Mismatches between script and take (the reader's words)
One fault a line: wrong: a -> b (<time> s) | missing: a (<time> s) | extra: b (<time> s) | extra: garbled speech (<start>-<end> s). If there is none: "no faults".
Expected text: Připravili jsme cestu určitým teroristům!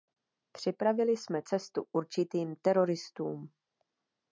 no faults